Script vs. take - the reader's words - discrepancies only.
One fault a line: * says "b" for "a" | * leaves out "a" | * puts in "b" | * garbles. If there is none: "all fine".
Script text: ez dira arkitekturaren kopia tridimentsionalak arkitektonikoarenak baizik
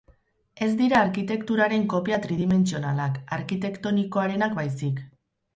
all fine